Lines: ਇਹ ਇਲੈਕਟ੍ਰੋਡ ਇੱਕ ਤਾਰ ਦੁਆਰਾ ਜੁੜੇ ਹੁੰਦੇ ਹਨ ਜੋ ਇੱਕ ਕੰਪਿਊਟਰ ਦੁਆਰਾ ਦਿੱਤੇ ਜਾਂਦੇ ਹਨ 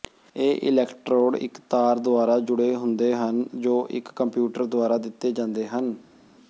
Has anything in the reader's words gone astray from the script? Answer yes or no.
no